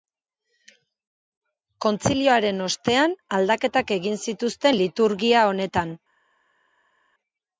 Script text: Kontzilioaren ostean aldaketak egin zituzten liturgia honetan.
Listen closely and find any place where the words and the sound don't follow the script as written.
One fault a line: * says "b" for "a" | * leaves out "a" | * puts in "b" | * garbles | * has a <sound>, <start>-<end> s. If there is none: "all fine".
all fine